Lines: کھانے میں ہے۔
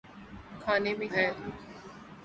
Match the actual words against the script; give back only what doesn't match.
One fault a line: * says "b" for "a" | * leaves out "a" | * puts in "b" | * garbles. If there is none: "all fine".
all fine